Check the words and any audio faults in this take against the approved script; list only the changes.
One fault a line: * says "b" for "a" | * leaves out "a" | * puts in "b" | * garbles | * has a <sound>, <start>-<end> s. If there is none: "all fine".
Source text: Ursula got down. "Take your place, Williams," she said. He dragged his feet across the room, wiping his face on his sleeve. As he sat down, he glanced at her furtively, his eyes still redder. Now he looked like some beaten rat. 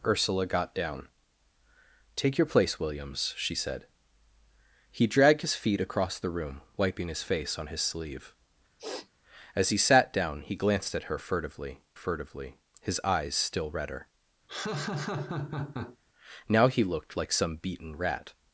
* has a sniff, 8.8-9.1 s
* puts in "furtively"
* has a laugh, 14.5-16.0 s